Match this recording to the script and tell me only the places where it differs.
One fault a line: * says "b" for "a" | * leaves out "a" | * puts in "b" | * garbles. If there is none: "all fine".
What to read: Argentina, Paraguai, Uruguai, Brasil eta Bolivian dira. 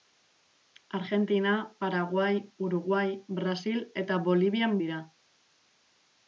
all fine